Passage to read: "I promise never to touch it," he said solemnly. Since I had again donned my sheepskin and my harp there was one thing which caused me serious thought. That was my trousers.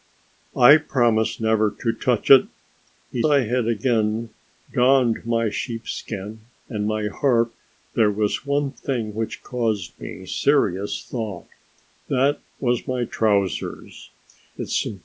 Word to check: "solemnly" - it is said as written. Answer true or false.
false